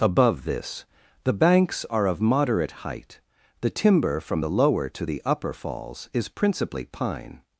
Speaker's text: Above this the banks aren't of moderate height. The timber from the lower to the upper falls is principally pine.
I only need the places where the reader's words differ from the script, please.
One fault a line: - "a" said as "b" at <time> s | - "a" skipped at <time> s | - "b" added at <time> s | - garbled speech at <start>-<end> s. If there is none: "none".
- "aren't" said as "are" at 1.9 s